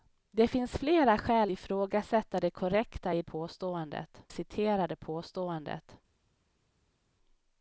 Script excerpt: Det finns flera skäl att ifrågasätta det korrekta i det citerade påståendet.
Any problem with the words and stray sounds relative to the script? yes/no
yes